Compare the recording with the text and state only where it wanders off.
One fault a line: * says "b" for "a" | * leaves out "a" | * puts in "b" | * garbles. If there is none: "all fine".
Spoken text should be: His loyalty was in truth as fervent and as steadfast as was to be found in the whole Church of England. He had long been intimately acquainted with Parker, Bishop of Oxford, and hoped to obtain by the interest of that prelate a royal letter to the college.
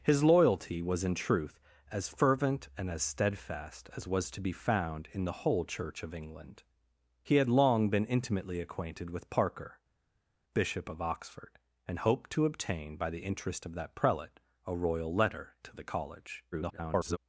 * garbles